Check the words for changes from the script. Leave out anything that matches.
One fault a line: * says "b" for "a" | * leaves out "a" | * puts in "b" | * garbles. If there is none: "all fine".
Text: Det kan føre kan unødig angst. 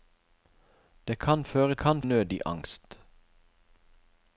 all fine